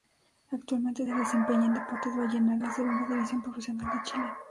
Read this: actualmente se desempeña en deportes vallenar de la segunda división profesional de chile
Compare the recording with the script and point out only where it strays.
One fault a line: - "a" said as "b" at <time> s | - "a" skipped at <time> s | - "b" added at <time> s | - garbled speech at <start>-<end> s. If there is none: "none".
- "de" skipped at 2.6 s